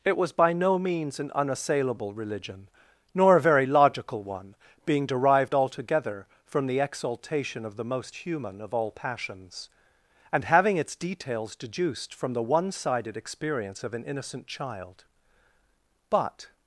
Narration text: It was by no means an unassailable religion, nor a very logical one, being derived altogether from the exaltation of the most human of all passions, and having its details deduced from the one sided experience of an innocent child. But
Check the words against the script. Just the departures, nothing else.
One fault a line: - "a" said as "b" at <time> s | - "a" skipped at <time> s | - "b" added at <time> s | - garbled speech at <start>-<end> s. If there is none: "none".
none